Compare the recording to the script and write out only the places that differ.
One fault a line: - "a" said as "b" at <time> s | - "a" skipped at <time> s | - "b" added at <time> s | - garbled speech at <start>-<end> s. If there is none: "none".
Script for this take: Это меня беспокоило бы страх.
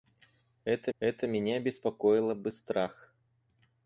- "это" added at 1.0 s